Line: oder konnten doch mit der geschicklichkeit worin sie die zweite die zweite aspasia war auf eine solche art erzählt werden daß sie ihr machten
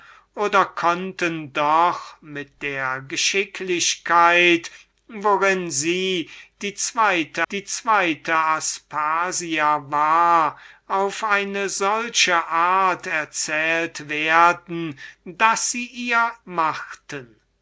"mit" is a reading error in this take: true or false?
false